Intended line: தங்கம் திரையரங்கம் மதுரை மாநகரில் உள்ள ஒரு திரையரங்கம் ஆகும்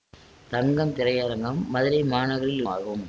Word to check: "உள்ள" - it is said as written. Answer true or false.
false